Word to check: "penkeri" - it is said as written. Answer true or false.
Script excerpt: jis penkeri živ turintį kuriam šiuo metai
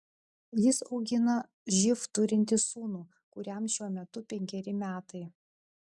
false